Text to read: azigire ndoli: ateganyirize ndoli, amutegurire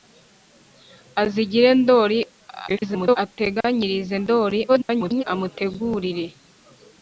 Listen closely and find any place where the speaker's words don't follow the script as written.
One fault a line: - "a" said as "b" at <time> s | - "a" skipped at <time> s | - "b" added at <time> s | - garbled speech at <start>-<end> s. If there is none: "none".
- garbled speech at 2.7-3.2 s
- garbled speech at 4.7-5.2 s